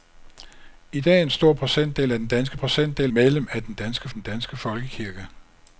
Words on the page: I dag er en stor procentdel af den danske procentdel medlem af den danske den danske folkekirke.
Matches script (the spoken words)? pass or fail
pass